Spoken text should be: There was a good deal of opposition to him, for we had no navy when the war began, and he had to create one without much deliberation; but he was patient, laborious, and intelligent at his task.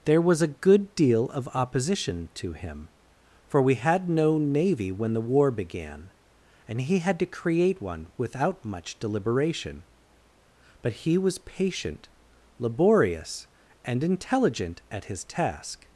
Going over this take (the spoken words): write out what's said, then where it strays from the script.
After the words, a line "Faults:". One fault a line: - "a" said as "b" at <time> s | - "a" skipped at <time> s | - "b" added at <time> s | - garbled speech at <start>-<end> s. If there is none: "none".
There was a good deal of opposition to him, for we had no navy when the war began, and he had to create one without much deliberation; but he was patient, laborious, and intelligent at his task.
Faults:
none